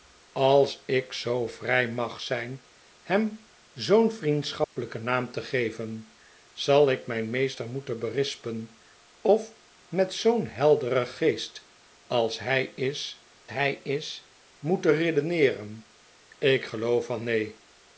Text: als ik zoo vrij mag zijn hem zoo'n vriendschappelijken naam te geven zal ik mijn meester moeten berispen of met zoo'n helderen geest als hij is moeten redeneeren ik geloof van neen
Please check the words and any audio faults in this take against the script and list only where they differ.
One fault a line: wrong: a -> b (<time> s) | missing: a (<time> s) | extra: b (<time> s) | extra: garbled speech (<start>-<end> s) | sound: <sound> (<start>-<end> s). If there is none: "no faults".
sound: dropout (4.6-4.8 s)
extra: hij is (13.5 s)